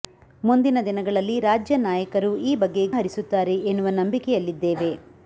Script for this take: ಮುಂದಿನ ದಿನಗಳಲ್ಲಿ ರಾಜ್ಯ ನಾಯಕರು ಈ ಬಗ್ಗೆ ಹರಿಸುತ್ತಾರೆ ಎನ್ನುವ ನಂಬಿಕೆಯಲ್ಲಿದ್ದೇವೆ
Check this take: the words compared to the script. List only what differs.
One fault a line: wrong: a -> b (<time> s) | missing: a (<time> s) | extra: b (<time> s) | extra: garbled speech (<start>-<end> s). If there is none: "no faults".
no faults